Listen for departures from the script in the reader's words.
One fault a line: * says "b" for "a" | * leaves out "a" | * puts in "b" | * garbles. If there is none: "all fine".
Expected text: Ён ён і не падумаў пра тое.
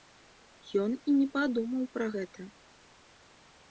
* leaves out "ён"
* says "гэта" for "тое"